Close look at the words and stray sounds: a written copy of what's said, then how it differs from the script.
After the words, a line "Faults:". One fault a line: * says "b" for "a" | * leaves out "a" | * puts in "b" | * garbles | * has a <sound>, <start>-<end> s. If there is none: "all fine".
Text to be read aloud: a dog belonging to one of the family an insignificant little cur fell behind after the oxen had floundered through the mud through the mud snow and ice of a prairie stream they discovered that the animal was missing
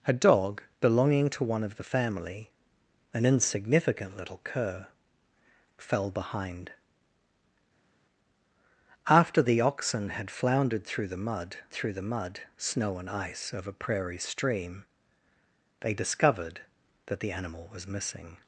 a dog belonging to one of the family an insignificant little cur fell behind after the oxen had floundered through the mud through the mud snow and ice of a prairie stream they discovered that the animal was missing
Faults:
all fine